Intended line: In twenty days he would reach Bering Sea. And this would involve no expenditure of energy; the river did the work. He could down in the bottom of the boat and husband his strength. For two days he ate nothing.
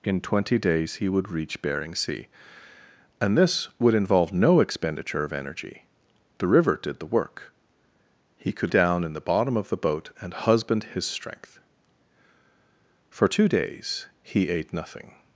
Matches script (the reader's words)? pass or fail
pass